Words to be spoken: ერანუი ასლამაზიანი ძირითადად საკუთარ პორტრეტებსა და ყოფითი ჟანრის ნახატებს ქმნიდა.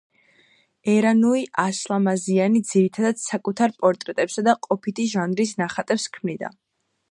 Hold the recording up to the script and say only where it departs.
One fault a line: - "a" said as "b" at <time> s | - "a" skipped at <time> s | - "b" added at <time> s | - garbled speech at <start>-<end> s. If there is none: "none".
none